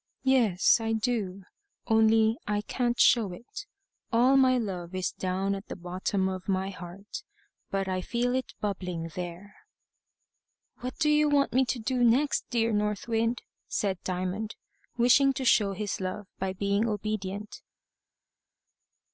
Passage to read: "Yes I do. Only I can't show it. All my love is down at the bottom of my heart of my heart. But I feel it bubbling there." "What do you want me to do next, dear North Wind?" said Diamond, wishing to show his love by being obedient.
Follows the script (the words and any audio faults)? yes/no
no